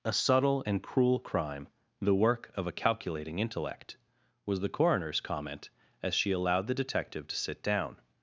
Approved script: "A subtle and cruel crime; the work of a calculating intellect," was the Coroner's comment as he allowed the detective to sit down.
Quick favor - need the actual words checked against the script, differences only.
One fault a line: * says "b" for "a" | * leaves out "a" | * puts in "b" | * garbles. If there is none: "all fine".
* says "she" for "he"